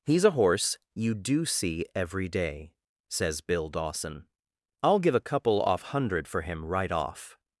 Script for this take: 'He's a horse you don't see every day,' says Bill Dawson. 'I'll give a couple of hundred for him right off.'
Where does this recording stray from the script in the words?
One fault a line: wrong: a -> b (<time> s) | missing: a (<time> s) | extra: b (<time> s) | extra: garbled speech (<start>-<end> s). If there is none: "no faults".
wrong: don't -> do (1.1 s)
wrong: of -> off (5.6 s)